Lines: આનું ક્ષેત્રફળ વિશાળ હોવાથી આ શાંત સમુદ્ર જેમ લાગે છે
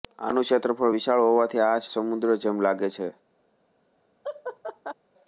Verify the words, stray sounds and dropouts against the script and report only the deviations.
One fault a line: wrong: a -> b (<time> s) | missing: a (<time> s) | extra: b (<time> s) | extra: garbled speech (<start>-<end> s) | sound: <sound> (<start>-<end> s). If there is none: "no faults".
missing: શાંત (1.8 s)
sound: laugh (4.2-4.9 s)